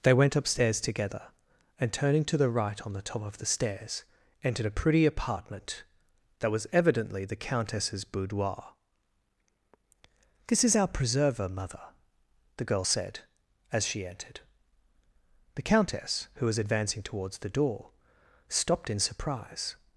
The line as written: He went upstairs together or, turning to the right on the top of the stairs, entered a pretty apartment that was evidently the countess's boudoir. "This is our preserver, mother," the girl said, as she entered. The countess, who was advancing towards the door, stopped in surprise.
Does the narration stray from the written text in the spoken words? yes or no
yes